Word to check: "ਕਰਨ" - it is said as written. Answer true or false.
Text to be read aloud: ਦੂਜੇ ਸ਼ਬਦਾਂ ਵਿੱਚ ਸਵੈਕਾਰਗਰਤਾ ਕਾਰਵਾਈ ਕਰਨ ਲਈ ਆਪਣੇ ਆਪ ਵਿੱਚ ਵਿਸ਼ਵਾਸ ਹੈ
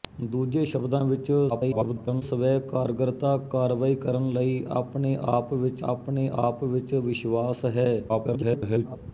true